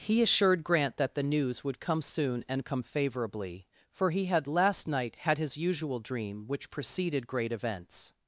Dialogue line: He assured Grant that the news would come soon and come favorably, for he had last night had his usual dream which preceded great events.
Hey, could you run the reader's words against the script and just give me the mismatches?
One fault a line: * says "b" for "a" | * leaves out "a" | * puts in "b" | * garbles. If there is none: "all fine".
all fine